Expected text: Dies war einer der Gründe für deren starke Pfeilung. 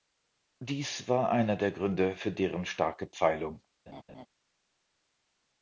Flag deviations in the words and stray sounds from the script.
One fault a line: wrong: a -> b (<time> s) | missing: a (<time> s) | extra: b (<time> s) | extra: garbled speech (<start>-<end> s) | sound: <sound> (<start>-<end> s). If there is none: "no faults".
sound: laugh (3.9-4.3 s)